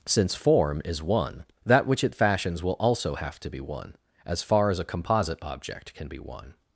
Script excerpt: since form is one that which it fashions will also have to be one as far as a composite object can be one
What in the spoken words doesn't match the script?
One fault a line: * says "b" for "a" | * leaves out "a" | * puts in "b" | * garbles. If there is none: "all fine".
all fine